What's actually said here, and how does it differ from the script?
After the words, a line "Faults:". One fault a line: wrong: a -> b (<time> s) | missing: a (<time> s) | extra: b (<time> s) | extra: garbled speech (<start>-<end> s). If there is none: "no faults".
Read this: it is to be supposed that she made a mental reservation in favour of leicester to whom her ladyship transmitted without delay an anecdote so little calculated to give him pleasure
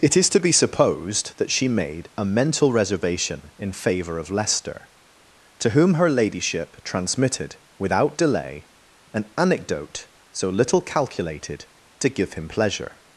it is to be supposed that she made a mental reservation in favour of leicester to whom her ladyship transmitted without delay an anecdote so little calculated to give him pleasure
Faults:
no faults